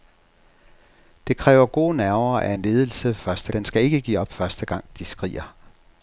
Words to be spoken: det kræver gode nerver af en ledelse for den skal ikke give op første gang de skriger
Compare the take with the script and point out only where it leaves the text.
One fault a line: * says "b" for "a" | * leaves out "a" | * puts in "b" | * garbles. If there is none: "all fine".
* says "første" for "for"